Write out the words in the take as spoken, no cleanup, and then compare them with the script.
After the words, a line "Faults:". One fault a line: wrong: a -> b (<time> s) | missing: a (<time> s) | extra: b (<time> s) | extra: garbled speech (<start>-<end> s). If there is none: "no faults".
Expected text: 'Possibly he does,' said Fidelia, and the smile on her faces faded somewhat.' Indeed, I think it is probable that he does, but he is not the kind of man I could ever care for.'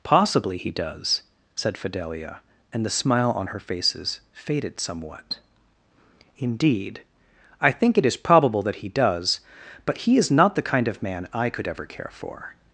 'Possibly he does,' said Fidelia, and the smile on her faces faded somewhat.' Indeed, I think it is probable that he does, but he is not the kind of man I could ever care for.'
Faults:
no faults